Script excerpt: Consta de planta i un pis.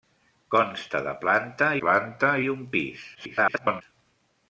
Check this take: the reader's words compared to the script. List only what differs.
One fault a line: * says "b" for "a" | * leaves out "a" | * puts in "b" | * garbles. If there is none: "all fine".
* puts in "planta"
* garbles